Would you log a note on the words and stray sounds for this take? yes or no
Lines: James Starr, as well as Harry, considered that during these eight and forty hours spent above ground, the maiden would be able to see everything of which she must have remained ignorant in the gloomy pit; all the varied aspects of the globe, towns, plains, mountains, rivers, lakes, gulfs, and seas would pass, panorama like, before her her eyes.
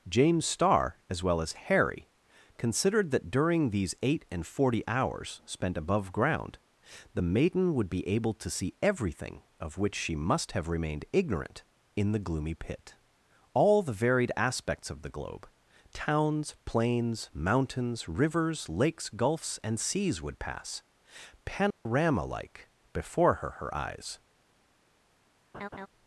yes